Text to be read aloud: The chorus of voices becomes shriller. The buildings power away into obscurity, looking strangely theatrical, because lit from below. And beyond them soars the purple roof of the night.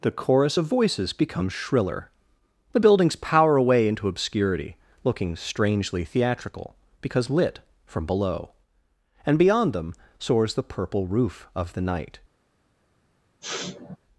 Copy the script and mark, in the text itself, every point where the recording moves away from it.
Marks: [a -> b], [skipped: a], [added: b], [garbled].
The chorus of voices becomes shriller. The buildings power away into obscurity, looking strangely theatrical, because lit from below. And beyond them soars the purple roof of the night.